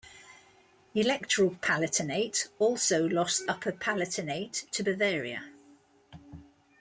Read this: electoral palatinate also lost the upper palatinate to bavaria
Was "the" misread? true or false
true